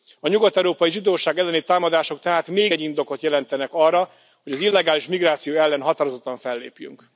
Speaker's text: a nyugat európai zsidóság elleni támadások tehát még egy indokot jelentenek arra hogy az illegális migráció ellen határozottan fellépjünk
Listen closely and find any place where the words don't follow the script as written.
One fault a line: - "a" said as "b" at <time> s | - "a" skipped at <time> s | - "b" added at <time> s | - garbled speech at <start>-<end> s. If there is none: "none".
none